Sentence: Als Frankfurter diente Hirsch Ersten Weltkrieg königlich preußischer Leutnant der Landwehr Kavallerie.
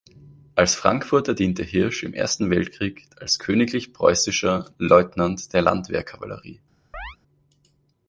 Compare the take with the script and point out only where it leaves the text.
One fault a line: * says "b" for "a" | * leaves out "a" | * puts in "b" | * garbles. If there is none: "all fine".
* puts in "im"
* puts in "als"